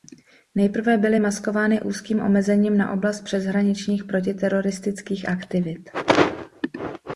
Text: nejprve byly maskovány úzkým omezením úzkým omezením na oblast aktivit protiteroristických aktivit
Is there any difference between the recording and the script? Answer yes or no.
yes